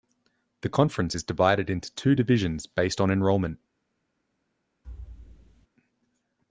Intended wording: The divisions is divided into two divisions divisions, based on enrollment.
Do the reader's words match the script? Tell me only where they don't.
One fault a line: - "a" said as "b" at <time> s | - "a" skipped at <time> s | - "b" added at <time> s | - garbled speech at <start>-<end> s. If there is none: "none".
- "divisions" said as "conference" at 0.7 s
- "divisions" skipped at 2.7 s